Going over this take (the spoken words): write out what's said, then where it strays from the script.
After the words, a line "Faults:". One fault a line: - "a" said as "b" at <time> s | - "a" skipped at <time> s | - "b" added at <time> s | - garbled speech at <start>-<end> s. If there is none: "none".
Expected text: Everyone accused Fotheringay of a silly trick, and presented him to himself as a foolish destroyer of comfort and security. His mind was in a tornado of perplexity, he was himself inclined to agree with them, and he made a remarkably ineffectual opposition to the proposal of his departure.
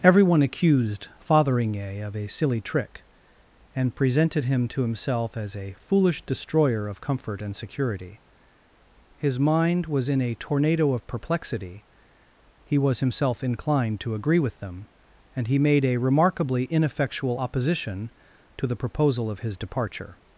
Everyone accused Fotheringay of a silly trick, and presented him to himself as a foolish destroyer of comfort and security. His mind was in a tornado of perplexity, he was himself inclined to agree with them, and he made a remarkably ineffectual opposition to the proposal of his departure.
Faults:
none